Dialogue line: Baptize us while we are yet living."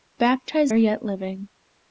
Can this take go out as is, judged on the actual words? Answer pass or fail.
fail